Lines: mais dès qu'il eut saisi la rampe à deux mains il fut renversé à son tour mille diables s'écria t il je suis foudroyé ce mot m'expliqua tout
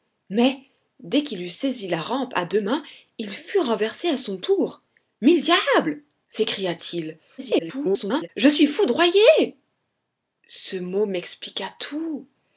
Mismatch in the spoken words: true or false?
true